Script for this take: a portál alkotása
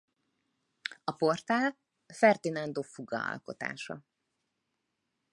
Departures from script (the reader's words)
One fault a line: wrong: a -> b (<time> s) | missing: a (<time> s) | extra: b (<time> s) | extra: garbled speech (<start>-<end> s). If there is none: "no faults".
extra: ferdinando fuga (2.1 s)